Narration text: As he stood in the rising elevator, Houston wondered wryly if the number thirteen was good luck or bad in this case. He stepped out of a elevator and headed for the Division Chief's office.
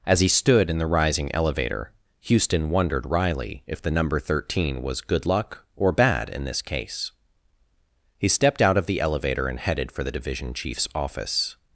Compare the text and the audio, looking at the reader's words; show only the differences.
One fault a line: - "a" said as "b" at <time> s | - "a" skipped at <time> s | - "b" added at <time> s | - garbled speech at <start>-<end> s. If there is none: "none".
- "a" said as "the" at 8.8 s